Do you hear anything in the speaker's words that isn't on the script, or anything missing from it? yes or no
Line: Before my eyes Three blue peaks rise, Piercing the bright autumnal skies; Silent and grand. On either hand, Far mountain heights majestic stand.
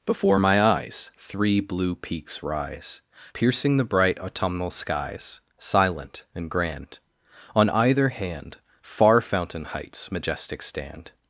yes